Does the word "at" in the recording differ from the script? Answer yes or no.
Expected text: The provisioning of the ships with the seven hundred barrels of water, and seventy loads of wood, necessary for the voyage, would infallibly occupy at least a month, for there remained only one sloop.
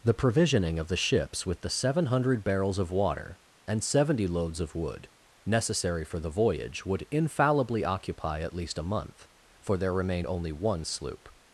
no